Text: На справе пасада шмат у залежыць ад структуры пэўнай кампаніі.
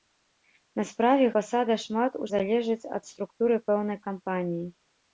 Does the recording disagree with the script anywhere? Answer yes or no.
no